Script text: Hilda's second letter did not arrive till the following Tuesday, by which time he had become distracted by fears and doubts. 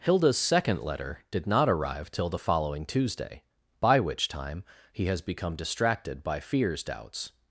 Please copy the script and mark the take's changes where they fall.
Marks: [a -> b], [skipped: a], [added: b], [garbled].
Hilda's second letter did not arrive till the following Tuesday, by which time he [had -> has] become distracted by fears [skipped: and] doubts.